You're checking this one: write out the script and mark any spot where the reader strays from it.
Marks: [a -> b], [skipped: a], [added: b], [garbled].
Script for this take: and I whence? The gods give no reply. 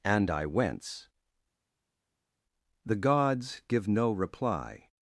and I whence? The gods give no reply.